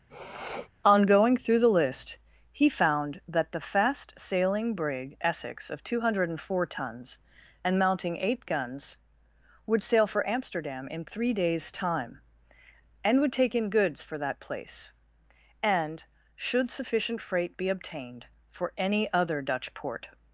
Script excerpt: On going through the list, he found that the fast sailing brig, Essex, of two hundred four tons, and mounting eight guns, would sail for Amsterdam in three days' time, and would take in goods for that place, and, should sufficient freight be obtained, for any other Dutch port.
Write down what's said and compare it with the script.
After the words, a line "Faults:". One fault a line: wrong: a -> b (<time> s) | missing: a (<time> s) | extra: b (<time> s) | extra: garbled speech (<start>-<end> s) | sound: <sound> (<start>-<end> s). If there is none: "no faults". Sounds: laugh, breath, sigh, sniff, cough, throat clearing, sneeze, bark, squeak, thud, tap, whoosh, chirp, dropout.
On going through the list, he found that the fast sailing brig, Essex, of two hundred four tons, and mounting eight guns, would sail for Amsterdam in three days' time, and would take in goods for that place, and, should sufficient freight be obtained, for any other Dutch port.
Faults:
sound: sniff (0.1-0.7 s)